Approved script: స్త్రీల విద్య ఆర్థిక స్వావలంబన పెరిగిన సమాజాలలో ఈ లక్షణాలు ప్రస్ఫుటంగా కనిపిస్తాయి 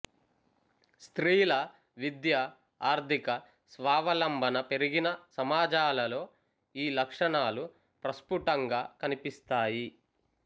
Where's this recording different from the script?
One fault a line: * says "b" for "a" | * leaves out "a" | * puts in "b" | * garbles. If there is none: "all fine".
all fine